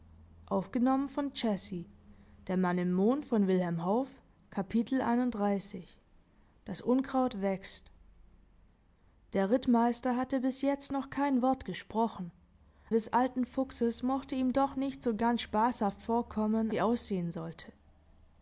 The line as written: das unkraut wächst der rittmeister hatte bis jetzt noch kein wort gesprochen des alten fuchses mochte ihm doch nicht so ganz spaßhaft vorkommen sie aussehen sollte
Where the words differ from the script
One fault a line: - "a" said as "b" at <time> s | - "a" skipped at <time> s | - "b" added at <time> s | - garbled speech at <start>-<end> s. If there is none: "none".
none